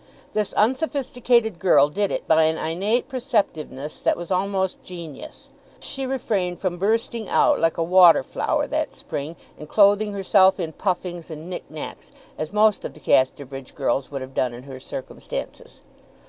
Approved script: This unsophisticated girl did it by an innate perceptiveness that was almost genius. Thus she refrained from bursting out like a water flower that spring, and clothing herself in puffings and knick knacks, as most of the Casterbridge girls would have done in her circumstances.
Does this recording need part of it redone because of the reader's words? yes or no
yes